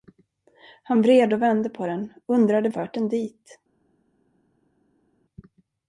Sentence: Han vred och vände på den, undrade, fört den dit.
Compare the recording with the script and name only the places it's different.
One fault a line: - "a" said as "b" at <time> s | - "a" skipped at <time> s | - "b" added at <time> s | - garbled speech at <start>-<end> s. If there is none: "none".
none